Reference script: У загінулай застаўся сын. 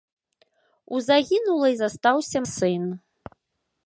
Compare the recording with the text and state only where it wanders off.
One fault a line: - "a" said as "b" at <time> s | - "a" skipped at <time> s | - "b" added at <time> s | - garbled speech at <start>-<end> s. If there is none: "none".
none